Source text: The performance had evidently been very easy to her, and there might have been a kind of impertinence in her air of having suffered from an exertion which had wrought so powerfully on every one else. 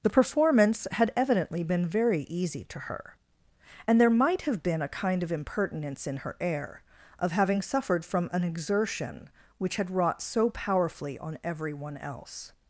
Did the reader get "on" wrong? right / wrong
right